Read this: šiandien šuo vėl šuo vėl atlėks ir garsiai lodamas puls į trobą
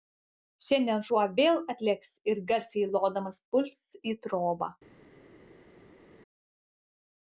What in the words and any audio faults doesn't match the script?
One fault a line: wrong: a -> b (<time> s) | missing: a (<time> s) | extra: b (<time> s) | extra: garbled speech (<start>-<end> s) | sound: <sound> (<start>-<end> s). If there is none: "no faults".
missing: šuo vėl (1.6 s)